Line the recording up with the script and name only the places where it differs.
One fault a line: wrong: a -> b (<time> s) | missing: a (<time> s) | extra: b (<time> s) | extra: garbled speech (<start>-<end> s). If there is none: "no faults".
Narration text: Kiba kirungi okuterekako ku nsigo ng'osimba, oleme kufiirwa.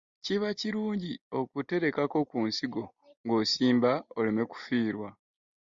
no faults